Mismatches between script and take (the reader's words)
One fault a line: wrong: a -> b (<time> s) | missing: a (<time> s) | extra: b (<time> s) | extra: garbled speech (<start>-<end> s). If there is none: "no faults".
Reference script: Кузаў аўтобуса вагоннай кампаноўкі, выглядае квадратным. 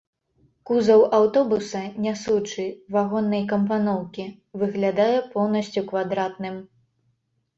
extra: нясучы (2.0 s)
extra: поўнасцю (5.3 s)